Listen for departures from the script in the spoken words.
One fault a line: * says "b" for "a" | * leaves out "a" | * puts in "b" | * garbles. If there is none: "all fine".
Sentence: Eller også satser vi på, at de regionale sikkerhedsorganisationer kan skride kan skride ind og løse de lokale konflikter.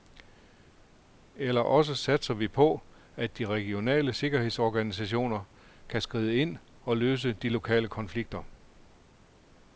* leaves out "kan skride"